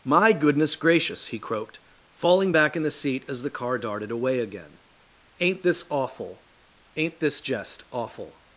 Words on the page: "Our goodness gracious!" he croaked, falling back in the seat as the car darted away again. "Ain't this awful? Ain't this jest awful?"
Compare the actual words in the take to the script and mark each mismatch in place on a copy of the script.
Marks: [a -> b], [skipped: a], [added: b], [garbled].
["Our -> My] goodness gracious!" he croaked, falling back in the seat as the car darted away again. "Ain't this awful? Ain't this jest awful?"